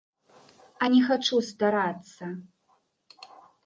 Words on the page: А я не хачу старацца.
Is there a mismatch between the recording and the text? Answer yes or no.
yes